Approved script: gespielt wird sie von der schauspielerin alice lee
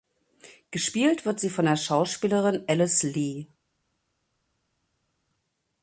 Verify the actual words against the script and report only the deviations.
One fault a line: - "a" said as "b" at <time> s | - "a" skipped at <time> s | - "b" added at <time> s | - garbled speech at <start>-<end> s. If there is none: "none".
none